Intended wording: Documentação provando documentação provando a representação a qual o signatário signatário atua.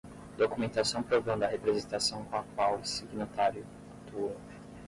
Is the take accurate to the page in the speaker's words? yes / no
no